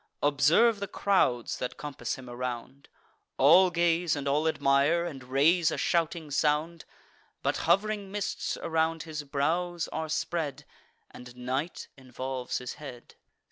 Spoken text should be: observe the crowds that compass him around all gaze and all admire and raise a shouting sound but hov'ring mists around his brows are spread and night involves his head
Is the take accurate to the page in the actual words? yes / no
yes